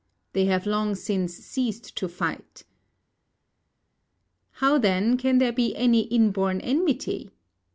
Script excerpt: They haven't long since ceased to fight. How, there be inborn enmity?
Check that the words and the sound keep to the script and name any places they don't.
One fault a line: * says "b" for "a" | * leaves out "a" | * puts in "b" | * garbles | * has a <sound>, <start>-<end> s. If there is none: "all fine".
* says "have" for "haven't"
* puts in "then can"
* puts in "any"